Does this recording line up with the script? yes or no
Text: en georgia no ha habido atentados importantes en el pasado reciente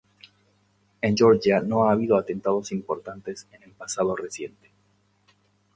yes